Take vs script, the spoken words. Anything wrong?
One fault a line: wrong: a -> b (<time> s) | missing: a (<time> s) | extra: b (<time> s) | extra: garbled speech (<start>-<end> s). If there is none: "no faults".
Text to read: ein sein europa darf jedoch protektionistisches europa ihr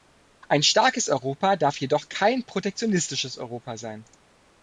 wrong: sein -> starkes (0.6 s)
extra: kein (2.1 s)
wrong: ihr -> sein (3.8 s)